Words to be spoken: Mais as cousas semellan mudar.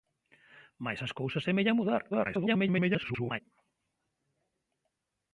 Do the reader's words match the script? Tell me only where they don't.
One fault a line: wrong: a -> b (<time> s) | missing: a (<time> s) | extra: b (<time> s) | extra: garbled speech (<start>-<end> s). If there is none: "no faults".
extra: garbled speech (2.1-3.4 s)